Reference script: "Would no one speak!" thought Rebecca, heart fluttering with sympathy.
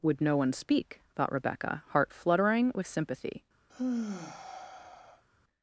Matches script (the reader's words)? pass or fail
pass